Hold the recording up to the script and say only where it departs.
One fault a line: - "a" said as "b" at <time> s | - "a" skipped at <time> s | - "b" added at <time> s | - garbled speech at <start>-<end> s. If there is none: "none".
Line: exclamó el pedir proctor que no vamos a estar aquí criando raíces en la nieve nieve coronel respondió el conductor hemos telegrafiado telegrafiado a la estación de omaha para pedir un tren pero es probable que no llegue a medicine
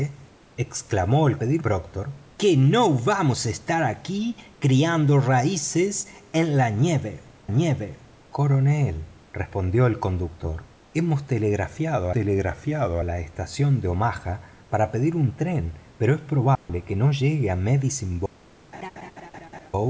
none